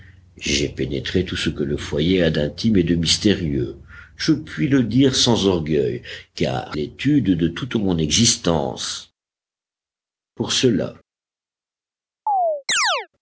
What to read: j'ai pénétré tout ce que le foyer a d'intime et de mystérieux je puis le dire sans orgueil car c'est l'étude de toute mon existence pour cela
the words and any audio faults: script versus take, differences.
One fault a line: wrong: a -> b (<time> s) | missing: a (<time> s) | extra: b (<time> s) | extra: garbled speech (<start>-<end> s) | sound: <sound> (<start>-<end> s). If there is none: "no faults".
missing: c'est (6.8 s)
sound: chirp (12.3-13.1 s)